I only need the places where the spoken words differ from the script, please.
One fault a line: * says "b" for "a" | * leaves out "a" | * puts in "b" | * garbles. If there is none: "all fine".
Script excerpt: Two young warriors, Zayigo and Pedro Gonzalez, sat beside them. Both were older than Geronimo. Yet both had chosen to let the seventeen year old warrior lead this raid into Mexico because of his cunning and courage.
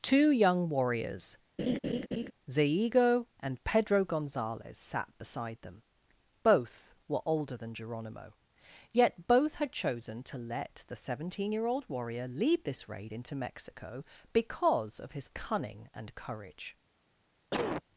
all fine